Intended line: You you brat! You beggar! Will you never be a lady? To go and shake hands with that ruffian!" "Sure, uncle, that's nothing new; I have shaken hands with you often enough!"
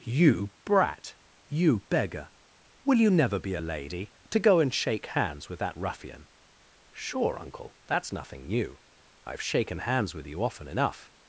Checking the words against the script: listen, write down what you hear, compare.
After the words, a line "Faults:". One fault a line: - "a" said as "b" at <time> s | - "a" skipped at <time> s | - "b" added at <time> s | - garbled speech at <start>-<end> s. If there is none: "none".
You brat! You beggar! Will you never be a lady? To go and shake hands with that ruffian!" "Sure, uncle, that's nothing new; I have shaken hands with you often enough!"
Faults:
- "you" skipped at 0.5 s